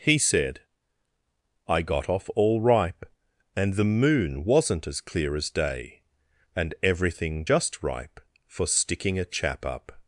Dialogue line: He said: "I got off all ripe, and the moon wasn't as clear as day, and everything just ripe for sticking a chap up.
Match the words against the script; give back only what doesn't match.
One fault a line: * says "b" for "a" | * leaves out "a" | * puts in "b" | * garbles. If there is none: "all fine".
all fine